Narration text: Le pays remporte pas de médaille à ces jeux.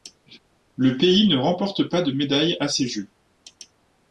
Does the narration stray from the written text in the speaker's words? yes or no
yes